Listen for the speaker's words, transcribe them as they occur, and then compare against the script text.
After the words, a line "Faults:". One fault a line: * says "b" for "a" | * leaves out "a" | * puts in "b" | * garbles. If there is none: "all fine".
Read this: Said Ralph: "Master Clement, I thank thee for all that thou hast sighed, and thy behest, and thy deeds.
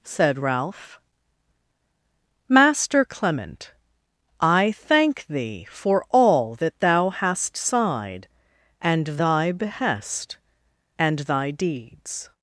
Said Ralph: "Master Clement, I thank thee for all that thou hast sighed, and thy behest, and thy deeds.
Faults:
all fine